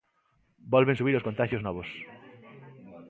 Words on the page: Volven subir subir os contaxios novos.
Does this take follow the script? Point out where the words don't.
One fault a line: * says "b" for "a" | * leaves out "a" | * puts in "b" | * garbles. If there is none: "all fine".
* leaves out "subir"